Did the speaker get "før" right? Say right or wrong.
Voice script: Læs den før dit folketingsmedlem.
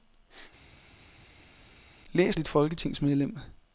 wrong